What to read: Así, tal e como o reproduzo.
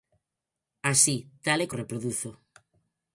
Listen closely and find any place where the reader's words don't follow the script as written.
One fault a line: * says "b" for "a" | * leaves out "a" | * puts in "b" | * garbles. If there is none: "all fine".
* leaves out "como"